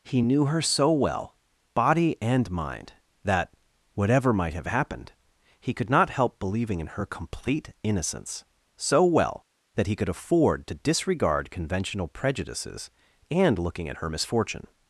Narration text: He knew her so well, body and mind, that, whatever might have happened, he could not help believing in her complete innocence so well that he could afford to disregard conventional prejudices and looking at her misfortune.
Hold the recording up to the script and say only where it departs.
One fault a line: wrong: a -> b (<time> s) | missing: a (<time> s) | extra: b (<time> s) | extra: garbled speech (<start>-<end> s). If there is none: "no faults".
no faults